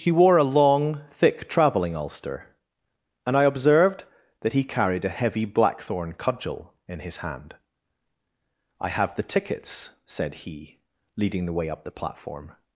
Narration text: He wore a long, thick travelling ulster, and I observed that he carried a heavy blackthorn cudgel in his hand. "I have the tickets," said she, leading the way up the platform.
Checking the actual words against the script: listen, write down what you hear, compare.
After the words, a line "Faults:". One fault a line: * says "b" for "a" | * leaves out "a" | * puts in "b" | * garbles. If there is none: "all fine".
He wore a long, thick travelling ulster, and I observed that he carried a heavy blackthorn cudgel in his hand. "I have the tickets," said he, leading the way up the platform.
Faults:
* says "he" for "she"